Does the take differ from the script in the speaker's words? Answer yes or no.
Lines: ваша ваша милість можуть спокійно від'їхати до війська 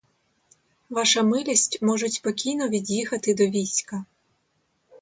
yes